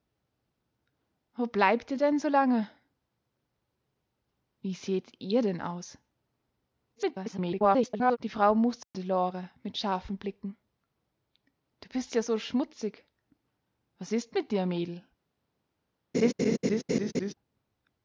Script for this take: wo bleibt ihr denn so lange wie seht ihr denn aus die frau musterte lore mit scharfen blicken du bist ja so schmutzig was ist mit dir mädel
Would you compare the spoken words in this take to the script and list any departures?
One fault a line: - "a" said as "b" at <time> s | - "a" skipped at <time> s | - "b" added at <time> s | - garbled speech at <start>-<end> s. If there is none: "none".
- garbled speech at 7.0-8.2 s